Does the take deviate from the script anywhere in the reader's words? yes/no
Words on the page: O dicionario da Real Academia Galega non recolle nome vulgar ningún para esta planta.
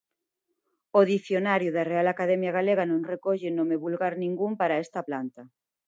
no